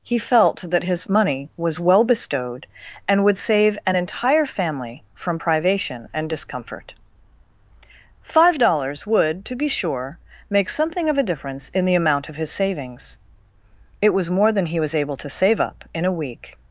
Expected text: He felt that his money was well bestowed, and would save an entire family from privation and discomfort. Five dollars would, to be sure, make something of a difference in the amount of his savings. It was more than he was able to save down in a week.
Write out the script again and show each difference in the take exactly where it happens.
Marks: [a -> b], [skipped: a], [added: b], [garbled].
He felt that his money was well bestowed, and would save an entire family from privation and discomfort. Five dollars would, to be sure, make something of a difference in the amount of his savings. It was more than he was able to save [down -> up] in a week.